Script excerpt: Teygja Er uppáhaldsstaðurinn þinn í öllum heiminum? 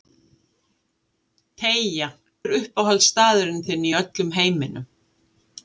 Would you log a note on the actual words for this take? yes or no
no